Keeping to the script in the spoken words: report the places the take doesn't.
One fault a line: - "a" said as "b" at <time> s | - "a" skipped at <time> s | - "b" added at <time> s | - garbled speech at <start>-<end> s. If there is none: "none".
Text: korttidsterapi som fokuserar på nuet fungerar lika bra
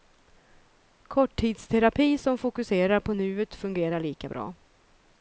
none